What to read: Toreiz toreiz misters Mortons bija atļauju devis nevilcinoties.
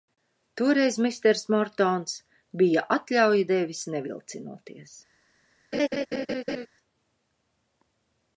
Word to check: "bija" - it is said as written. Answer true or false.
true